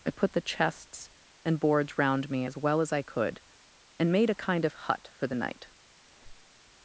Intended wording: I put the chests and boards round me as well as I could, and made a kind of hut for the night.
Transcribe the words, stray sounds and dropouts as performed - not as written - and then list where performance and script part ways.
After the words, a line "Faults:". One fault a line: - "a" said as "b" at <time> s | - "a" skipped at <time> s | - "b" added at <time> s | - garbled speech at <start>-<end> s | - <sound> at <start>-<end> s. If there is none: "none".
I put the chests and boards round me as well as I could, and made a kind of hut for the night.
Faults:
- squeak at 6.0-6.6 s